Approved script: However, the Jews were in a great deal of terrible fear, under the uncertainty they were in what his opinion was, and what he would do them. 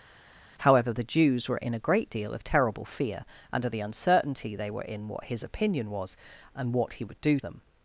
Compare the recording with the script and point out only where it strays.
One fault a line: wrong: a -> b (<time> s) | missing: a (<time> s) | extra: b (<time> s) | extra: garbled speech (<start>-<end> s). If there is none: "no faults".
no faults